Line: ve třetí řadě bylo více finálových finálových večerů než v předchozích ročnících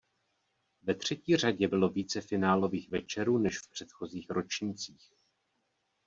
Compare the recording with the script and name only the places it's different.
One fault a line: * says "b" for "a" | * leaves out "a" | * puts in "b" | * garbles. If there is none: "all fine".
* leaves out "finálových"